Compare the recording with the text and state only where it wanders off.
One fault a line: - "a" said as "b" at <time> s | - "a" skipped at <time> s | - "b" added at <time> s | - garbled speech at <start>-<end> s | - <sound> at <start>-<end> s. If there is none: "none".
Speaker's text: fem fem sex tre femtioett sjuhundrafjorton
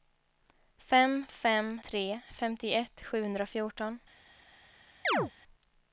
- "sex" skipped at 1.7 s
- chirp at 5.0-5.3 s